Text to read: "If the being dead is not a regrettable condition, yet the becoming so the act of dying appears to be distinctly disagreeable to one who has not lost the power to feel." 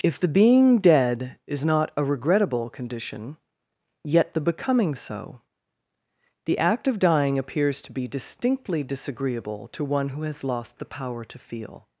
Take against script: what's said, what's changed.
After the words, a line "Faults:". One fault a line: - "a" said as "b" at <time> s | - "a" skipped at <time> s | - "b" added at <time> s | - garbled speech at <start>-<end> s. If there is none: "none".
"If the being dead is not a regrettable condition, yet the becoming so the act of dying appears to be distinctly disagreeable to one who has lost the power to feel."
Faults:
- "not" skipped at 10.4 s